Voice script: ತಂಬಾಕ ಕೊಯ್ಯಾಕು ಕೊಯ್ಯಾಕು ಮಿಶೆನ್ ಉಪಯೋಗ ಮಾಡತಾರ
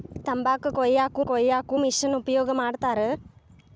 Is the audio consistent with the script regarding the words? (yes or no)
yes